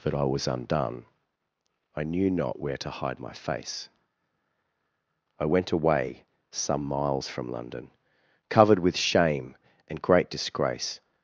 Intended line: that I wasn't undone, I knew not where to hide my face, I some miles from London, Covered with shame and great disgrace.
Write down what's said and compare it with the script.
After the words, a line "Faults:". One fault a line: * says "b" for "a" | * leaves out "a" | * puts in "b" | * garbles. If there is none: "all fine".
that I was undone, I knew not where to hide my face, I went away some miles from London, Covered with shame and great disgrace.
Faults:
* says "was" for "wasn't"
* puts in "went away"